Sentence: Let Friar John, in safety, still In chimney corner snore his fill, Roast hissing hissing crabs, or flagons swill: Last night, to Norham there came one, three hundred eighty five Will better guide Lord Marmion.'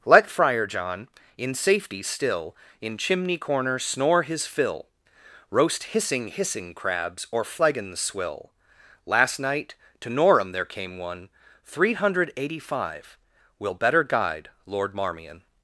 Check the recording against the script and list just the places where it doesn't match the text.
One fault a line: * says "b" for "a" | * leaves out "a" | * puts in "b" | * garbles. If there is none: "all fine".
all fine